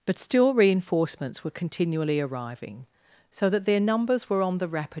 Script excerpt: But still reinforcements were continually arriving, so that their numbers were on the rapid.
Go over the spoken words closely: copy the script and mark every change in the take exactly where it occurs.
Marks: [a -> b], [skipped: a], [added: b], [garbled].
But still reinforcements were continually arriving, so that their numbers were on the rapid.